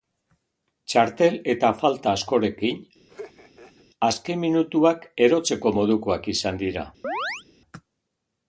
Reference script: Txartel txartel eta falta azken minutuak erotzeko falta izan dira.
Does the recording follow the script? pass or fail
fail